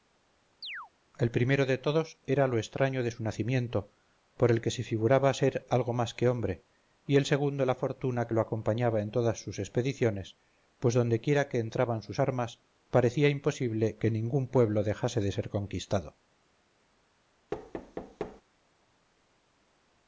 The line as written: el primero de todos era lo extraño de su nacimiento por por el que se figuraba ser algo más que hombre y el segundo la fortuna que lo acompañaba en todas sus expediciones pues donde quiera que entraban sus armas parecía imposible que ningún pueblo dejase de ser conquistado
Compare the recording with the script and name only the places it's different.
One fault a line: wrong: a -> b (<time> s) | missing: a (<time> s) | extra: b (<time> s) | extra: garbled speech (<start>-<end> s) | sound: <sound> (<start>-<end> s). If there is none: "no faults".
sound: chirp (0.6-0.9 s)
missing: por (4.5 s)
sound: thud (17.5-18.4 s)